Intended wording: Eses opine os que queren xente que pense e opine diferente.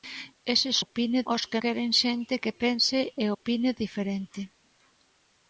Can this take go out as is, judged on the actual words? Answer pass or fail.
pass